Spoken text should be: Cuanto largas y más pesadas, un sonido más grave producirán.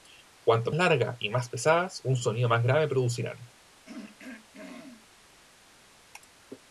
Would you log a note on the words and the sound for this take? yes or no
yes